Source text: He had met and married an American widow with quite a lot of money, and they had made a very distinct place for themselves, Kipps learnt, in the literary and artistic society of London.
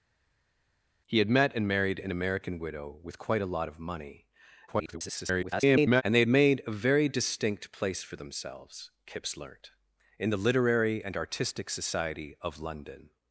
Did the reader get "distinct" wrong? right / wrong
right